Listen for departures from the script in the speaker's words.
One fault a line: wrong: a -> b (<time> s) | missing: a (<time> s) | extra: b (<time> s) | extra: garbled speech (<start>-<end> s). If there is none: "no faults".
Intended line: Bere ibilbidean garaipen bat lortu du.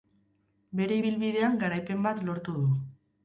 no faults